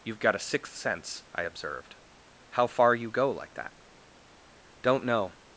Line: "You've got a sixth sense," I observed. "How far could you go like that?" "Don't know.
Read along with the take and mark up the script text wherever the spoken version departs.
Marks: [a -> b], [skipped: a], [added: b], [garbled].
"You've got a sixth sense," I observed. "How far [skipped: could] you go like that?" "Don't know.